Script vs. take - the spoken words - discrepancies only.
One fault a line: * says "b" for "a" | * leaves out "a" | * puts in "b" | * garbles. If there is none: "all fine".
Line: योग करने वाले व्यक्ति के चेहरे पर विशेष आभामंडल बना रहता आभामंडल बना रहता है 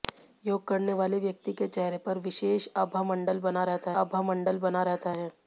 all fine